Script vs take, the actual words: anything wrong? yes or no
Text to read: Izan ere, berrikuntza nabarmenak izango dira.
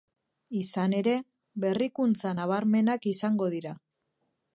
no